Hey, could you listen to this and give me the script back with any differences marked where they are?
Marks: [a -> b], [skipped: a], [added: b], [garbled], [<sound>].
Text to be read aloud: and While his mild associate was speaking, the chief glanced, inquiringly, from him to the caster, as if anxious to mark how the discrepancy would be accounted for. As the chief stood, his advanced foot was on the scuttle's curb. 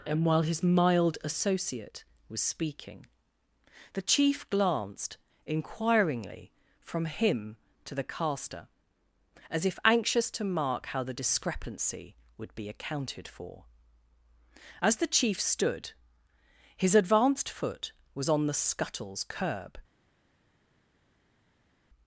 and While his mild associate was speaking, the chief glanced, inquiringly, from him to the caster, as if anxious to mark how the discrepancy would be accounted for. As the chief stood, his advanced foot was on the scuttle's curb.